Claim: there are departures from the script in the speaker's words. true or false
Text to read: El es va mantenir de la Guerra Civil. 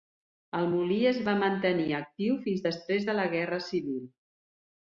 true